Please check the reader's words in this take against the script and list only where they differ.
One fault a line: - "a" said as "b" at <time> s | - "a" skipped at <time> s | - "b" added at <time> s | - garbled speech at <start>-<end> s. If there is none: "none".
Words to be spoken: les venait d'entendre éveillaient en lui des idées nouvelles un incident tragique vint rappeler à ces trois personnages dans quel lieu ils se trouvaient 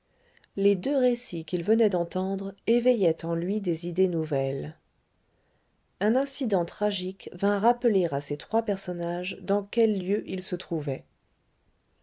- "deux récits qu'il" added at 0.8 s